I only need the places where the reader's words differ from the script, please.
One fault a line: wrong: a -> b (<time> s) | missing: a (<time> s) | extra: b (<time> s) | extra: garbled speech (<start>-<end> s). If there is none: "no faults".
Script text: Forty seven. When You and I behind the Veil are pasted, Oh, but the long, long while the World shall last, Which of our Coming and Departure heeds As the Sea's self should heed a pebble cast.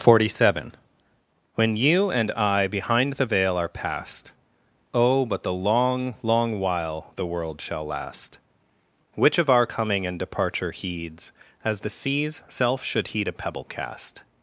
wrong: pasted -> past (3.7 s)